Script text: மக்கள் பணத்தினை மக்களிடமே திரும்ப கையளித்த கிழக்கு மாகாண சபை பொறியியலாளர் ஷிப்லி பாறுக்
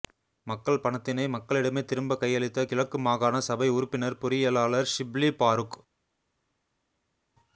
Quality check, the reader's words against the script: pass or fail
fail